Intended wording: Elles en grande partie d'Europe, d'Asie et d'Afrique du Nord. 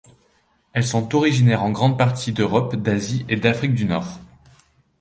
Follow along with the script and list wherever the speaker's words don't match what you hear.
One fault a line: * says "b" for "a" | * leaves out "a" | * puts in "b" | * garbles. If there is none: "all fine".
* puts in "sont originaires"